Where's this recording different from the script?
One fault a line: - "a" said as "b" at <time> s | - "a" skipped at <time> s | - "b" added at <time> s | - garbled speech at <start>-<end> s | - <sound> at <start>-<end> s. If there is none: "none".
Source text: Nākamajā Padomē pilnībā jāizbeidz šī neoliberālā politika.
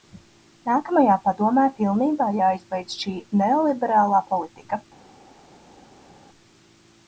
none